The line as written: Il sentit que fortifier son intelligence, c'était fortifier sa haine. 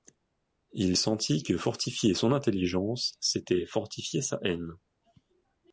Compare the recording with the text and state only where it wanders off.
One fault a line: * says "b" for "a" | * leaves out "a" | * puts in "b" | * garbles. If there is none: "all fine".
all fine